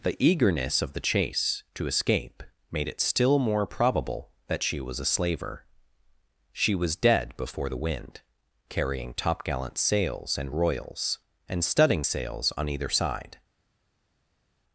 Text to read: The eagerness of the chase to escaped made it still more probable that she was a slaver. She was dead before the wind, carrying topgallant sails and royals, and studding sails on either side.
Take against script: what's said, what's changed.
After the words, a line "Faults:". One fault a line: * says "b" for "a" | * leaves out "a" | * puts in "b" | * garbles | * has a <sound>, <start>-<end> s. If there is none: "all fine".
The eagerness of the chase to escape made it still more probable that she was a slaver. She was dead before the wind, carrying topgallant sails and royals, and studding sails on either side.
Faults:
* says "escape" for "escaped"